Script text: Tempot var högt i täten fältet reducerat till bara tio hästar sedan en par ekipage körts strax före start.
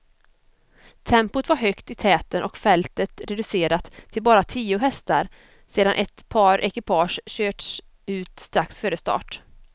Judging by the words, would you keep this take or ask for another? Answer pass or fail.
fail